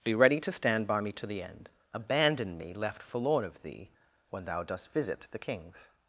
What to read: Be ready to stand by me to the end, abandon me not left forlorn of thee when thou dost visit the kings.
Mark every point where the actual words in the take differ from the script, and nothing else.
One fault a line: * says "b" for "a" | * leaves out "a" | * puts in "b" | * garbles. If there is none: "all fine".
* leaves out "not"